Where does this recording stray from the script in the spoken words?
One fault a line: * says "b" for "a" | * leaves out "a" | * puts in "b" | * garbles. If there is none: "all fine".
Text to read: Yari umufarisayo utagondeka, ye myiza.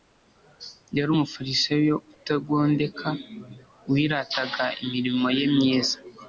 * puts in "wirataga imirimo"